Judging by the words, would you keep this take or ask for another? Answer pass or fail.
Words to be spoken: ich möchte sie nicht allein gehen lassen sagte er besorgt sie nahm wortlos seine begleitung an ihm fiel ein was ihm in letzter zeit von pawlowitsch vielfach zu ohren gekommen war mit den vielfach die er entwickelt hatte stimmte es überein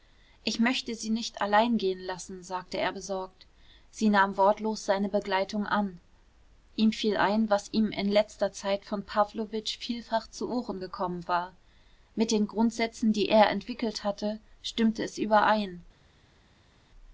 fail